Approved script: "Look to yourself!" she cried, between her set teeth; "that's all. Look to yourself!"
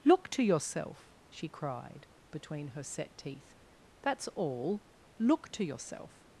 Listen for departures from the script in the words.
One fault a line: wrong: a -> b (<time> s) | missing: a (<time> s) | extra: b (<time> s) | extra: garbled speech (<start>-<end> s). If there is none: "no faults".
no faults